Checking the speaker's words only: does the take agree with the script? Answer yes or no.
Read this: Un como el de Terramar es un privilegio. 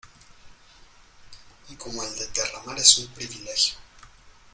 yes